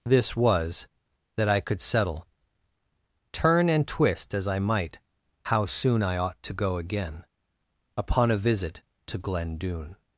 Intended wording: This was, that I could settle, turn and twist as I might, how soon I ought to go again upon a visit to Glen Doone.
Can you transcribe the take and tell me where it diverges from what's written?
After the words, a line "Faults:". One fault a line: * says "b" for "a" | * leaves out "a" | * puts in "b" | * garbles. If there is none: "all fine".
This was, that I could settle, turn and twist as I might, how soon I ought to go again upon a visit to Glen Doone.
Faults:
all fine